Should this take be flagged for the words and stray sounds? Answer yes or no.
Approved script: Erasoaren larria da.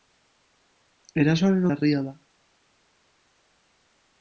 no